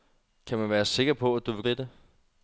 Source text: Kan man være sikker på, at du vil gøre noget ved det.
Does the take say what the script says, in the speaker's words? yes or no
no